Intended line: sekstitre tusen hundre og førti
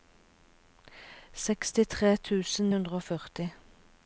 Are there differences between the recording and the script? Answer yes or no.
no